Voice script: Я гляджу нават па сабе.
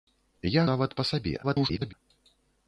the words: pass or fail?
fail